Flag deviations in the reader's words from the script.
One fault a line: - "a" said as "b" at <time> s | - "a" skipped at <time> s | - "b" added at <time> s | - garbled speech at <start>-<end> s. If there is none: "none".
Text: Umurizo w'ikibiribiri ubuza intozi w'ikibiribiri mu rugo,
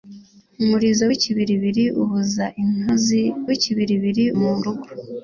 none